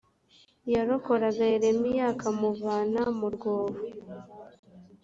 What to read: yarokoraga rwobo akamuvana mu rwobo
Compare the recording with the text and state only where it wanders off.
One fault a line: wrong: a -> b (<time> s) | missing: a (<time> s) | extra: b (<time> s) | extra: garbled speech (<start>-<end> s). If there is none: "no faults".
wrong: rwobo -> yeremiya (1.5 s)